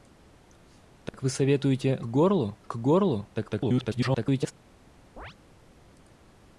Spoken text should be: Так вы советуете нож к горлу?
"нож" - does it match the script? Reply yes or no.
no